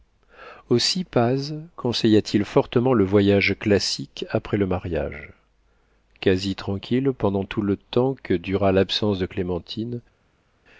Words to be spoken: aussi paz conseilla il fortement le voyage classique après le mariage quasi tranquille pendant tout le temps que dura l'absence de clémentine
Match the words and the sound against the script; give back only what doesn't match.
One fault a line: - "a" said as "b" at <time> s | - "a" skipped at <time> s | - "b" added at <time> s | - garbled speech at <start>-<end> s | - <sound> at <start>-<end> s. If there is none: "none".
- "t" added at 2.2 s